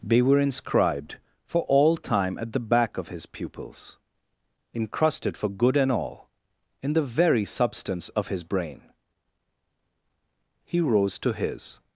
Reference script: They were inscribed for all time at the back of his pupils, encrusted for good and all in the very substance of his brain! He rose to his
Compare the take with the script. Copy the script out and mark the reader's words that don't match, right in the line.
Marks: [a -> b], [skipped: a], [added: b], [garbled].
They were inscribed for all time at the back of his pupils, encrusted for good and all in the very substance of his brain! He rose to his